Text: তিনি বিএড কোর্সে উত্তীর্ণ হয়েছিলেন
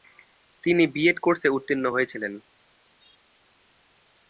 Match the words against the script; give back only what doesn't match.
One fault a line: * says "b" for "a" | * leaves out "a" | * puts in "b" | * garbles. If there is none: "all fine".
all fine